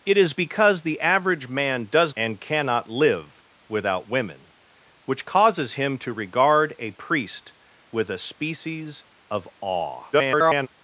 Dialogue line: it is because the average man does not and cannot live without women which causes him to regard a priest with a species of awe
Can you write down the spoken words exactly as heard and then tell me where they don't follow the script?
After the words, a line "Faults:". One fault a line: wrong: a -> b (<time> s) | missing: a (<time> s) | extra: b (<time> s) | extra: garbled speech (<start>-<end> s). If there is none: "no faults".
it is because the average man does and cannot live without women which causes him to regard a priest with a species of awe [garbled]
Faults:
missing: not (2.1 s)
extra: garbled speech (10.1-10.7 s)